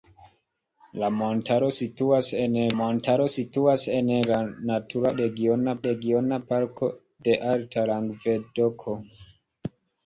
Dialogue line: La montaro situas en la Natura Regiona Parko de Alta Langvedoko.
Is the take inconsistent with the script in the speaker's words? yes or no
yes